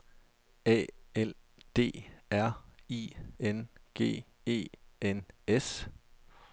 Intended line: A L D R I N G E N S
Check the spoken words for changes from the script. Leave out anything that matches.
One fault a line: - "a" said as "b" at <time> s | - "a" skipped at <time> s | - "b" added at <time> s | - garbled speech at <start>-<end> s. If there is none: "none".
none